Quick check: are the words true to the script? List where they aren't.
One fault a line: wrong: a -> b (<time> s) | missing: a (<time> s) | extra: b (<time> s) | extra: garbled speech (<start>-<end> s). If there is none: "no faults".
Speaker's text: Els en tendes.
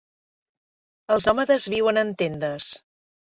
extra: nòmades viuen (1.3 s)